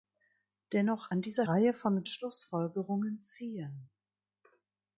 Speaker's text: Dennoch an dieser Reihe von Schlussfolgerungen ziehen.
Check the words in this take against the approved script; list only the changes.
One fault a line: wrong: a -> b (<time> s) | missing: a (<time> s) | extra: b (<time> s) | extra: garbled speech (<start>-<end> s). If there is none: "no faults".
no faults